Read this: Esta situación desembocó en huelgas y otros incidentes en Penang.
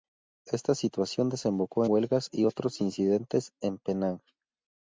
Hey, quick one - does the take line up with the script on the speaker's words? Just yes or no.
no